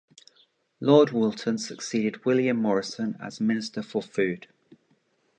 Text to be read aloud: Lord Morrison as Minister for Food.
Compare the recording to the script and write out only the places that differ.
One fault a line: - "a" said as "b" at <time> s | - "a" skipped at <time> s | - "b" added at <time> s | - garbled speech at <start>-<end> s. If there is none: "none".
- "Woolton succeeded William" added at 1.1 s